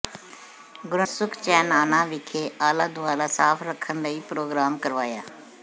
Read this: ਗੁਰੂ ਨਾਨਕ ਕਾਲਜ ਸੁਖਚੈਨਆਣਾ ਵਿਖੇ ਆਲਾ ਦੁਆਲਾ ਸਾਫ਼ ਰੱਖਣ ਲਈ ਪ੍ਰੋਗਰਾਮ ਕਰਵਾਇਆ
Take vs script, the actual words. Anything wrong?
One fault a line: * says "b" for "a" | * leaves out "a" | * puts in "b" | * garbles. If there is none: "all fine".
* leaves out "ਨਾਨਕ ਕਾਲਜ"